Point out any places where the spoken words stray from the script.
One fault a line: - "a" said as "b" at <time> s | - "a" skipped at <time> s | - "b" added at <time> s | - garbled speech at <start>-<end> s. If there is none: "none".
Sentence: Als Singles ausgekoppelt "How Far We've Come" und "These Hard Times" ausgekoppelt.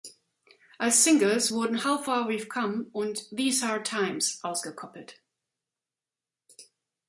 - "ausgekoppelt" said as "wurden" at 1.5 s